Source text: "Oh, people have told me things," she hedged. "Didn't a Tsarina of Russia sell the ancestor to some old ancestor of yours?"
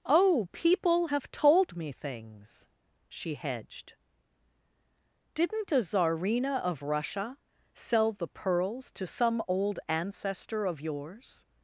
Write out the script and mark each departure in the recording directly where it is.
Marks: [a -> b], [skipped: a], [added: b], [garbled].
"Oh, people have told me things," she hedged. "Didn't a Tsarina of Russia sell the [ancestor -> pearls] to some old ancestor of yours?"